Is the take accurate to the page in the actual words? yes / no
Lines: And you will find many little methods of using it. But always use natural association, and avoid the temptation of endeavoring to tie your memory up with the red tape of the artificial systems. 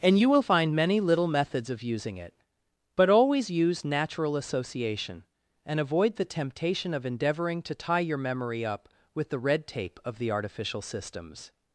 yes